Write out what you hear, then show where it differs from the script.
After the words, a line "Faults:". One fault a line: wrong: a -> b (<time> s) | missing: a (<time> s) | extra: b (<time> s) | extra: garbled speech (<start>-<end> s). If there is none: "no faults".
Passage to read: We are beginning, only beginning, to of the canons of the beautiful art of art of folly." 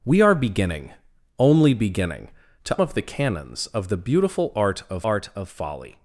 We are beginning, only beginning, to of the canons of the beautiful art of art of folly."
Faults:
no faults